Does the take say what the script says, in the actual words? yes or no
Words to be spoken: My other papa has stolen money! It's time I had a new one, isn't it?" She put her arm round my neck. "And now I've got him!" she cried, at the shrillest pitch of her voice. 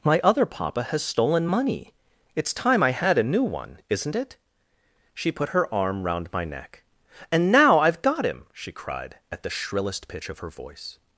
yes